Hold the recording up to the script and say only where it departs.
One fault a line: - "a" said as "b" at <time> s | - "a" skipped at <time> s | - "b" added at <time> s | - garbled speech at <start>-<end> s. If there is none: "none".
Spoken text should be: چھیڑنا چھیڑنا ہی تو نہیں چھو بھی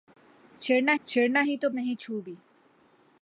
none